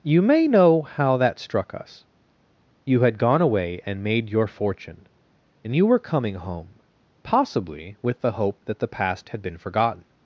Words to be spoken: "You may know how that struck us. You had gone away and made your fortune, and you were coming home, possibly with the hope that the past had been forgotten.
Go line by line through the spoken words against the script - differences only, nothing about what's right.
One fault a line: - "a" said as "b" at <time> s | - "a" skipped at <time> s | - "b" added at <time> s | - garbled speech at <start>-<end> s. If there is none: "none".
none